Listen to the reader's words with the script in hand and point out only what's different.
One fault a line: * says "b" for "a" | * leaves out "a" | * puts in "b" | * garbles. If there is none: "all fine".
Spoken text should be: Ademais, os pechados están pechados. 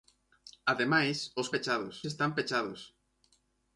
all fine